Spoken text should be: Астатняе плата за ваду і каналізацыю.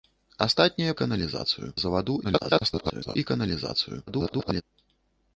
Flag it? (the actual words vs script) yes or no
yes